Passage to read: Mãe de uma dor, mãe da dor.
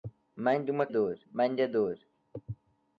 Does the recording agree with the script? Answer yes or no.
yes